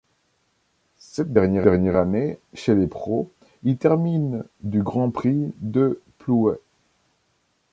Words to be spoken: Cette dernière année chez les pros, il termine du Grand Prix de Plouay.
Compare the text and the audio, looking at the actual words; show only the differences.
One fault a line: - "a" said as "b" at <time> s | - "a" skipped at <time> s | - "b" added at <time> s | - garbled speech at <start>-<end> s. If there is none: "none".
- "dernière" added at 1.6 s